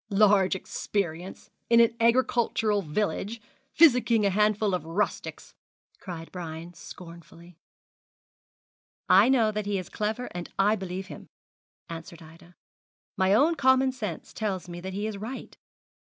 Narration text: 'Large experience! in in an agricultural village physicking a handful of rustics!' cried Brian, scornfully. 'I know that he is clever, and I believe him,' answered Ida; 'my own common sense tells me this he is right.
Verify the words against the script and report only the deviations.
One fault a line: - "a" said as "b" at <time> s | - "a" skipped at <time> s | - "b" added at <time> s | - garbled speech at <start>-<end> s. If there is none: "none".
- "in" skipped at 1.8 s
- "this" said as "that" at 14.8 s